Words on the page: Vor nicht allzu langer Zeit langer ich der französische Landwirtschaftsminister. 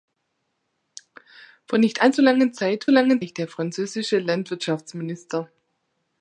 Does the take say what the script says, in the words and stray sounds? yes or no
yes